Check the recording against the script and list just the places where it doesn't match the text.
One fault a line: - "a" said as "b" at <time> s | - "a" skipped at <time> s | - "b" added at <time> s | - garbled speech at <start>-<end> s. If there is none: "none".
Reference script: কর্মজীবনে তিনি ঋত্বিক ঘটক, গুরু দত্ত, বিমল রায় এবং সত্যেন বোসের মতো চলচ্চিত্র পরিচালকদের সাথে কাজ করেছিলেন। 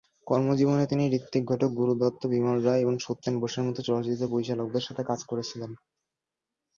none